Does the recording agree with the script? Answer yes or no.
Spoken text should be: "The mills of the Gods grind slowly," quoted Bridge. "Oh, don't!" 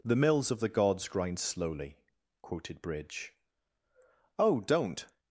yes